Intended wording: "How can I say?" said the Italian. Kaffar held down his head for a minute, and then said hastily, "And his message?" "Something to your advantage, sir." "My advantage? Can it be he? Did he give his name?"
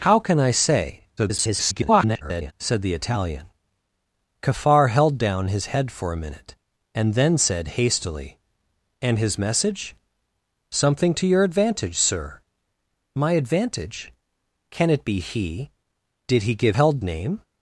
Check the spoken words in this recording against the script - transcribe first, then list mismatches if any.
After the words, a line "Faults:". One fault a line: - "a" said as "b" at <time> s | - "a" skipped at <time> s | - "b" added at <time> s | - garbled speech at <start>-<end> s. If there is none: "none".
"How can I say?" [garbled] said the Italian. Kaffar held down his head for a minute, and then said hastily, "And his message?" "Something to your advantage, sir." "My advantage? Can it be he? Did he give held name?"
Faults:
- garbled speech at 1.2-2.5 s
- "his" said as "held" at 16.7 s